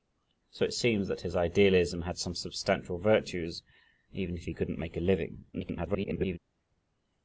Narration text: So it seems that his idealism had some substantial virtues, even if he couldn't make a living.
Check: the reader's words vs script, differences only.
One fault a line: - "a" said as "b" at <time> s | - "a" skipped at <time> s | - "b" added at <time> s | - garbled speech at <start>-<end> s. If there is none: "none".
- garbled speech at 5.5-6.4 s